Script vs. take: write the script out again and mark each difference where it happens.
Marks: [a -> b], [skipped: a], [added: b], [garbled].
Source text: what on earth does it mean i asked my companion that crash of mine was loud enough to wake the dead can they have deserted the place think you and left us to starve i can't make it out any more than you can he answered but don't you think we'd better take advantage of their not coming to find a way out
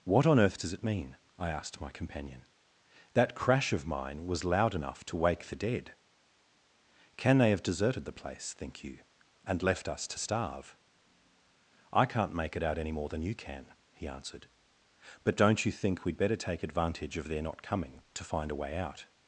what on earth does it mean i asked my companion that crash of mine was loud enough to wake the dead can they have deserted the place think you and left us to starve i can't make it out any more than you can he answered but don't you think we'd better take advantage of their not coming to find a way out